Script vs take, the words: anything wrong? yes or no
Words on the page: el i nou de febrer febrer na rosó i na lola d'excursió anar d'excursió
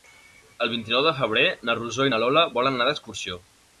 yes